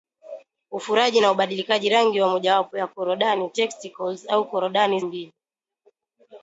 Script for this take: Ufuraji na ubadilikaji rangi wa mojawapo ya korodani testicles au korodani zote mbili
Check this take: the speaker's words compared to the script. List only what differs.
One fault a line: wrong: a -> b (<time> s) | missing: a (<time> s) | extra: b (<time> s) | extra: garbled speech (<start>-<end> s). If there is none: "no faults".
missing: zote (5.0 s)